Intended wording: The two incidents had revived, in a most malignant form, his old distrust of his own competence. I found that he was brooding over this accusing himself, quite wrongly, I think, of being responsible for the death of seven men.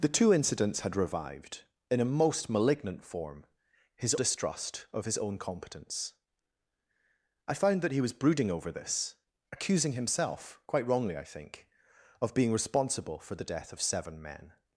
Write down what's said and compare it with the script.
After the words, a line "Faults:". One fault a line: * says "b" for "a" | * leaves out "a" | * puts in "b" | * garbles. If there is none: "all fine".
The two incidents had revived, in a most malignant form, his distrust of his own competence. I found that he was brooding over this accusing himself, quite wrongly, I think, of being responsible for the death of seven men.
Faults:
* leaves out "old"